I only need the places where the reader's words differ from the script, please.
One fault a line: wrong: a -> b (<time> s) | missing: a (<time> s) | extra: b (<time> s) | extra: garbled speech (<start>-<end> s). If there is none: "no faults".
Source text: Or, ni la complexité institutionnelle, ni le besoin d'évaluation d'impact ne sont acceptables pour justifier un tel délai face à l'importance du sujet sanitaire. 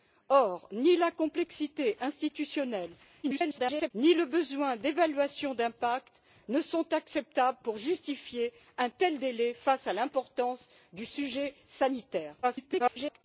extra: garbled speech (3.2-3.9 s)
extra: garbled speech (12.4-13.2 s)